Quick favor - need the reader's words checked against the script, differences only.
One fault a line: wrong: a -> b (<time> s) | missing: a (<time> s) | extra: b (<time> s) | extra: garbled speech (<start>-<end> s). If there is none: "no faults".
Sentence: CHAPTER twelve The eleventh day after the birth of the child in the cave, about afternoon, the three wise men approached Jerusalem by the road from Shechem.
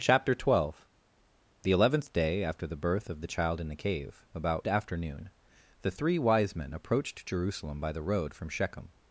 no faults